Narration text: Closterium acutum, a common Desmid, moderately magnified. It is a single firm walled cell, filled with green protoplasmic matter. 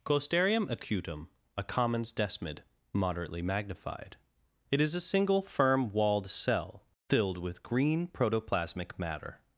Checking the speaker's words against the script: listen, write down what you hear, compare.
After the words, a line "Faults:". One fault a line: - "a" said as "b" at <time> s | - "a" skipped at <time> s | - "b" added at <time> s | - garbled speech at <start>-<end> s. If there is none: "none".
Closterium acutum, a commons Desmid, moderately magnified. It is a single firm walled cell, filled with green protoplasmic matter.
Faults:
- "common" said as "commons" at 1.6 s